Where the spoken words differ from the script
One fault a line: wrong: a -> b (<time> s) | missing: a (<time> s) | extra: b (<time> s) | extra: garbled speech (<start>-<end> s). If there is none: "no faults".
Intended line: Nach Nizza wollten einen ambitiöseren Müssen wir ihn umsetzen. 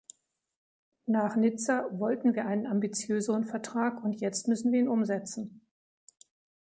extra: wir (2.3 s)
extra: Vertrag und jetzt (3.5 s)